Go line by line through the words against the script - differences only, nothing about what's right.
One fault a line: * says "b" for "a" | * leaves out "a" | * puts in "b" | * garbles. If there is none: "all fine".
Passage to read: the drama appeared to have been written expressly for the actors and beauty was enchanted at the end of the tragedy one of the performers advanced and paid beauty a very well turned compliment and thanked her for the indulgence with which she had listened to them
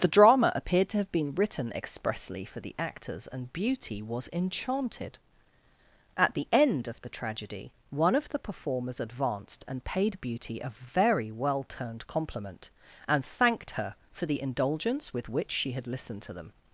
all fine